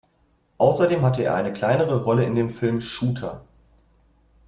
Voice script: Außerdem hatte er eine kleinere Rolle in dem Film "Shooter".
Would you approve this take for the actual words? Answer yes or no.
yes